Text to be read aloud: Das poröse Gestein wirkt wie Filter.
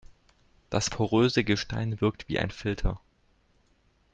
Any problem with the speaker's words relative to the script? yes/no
yes